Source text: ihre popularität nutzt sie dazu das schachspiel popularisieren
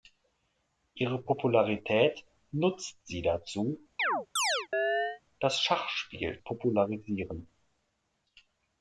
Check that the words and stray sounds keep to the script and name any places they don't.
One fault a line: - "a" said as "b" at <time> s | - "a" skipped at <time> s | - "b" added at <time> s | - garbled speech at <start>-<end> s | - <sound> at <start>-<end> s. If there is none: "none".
- chirp at 4.0-5.2 s